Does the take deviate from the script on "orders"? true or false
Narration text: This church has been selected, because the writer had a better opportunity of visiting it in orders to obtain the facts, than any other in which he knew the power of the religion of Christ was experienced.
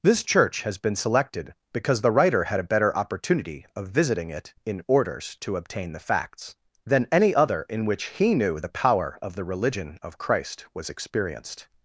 false